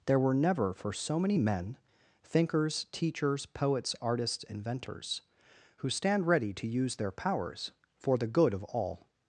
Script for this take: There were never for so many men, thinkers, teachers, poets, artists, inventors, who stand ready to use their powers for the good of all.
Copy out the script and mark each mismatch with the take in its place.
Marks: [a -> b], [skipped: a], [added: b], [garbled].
There were never for so many men, thinkers, teachers, poets, artists, inventors, who stand ready to use their powers for the good of all.